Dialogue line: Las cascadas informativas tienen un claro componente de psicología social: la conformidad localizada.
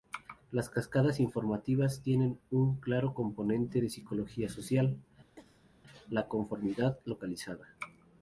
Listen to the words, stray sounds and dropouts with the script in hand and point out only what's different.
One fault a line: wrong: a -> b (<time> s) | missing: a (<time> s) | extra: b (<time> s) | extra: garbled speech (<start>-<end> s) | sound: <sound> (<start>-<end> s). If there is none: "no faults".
sound: cough (5.4-5.7 s)